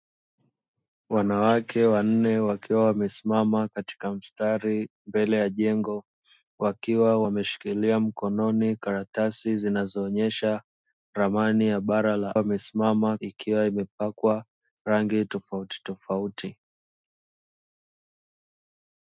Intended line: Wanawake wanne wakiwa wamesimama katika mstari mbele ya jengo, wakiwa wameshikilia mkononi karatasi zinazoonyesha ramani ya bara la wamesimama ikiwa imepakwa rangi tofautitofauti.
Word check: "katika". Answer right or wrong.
right